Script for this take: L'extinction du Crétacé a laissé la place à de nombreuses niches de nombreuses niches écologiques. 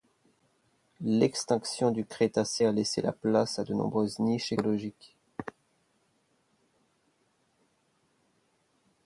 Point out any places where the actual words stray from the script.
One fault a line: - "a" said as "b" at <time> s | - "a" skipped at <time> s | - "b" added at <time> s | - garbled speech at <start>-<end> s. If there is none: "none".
- "de nombreuses niches" skipped at 4.5 s